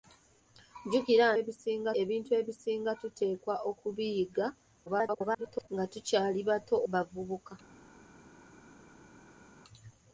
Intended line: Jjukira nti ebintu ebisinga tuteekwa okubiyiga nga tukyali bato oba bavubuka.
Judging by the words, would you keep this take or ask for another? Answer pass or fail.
fail